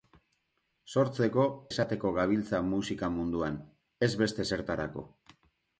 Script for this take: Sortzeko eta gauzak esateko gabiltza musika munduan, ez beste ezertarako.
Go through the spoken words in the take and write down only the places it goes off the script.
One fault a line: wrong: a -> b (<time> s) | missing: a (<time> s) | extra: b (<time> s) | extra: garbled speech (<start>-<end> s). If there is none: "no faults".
missing: eta gauzak (1.4 s)